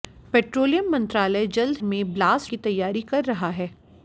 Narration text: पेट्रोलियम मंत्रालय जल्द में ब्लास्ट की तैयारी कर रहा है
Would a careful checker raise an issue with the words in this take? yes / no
no